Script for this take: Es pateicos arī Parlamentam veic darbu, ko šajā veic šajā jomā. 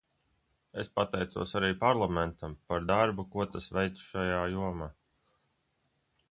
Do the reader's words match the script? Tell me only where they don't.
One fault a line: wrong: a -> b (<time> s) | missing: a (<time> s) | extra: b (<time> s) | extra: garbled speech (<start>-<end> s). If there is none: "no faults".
wrong: veic -> par (2.7 s)
wrong: šajā -> tas (3.5 s)